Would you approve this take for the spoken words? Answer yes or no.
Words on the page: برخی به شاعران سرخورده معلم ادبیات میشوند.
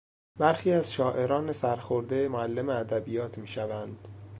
no